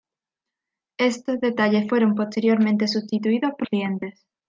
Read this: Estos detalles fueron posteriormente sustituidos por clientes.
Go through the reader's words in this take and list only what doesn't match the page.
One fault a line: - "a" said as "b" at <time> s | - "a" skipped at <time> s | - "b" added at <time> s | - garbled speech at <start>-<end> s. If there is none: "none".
none